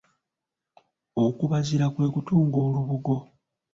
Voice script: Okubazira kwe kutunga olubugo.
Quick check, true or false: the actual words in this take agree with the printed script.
true